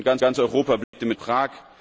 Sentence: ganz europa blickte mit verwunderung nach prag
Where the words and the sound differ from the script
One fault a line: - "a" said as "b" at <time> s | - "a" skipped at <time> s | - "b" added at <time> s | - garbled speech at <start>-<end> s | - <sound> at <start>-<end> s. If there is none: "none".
- "ganz" added at 0.2 s
- dropout at 0.8-0.9 s
- "verwunderung nach" skipped at 1.2 s